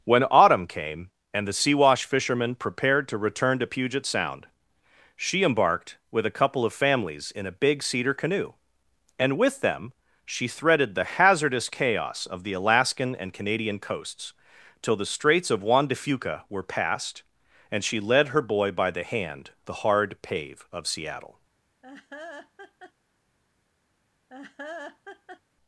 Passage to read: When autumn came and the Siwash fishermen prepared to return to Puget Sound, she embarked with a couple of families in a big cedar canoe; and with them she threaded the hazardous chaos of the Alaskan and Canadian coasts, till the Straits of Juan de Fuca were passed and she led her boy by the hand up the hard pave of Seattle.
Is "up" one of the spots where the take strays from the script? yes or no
yes